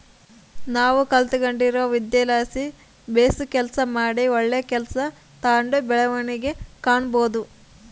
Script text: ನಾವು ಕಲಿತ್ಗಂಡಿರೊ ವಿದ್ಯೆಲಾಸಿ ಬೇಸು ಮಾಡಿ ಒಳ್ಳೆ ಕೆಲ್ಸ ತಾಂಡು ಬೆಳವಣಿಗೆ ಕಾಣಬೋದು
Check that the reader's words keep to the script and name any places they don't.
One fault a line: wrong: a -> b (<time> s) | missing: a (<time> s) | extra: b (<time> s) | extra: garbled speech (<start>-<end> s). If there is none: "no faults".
extra: ಕೆಲಸ (3.5 s)